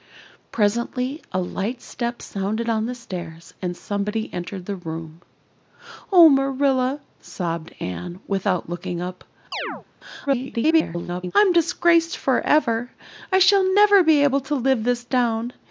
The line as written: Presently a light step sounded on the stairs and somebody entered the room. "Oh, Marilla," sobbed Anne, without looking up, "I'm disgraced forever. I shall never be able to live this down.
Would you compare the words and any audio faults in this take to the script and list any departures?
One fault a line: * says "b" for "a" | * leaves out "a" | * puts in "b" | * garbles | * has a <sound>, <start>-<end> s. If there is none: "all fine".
* has a chirp, 9.5-9.9 s
* garbles